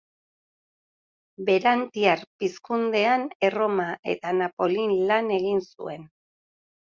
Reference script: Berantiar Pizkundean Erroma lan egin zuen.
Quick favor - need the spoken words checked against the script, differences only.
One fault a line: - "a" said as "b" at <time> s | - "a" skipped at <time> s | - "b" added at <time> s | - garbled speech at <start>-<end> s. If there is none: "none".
- "eta Napolin" added at 4.1 s